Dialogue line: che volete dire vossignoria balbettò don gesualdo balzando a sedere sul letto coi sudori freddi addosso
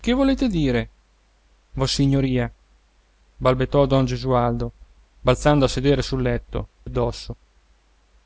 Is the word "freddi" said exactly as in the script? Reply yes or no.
no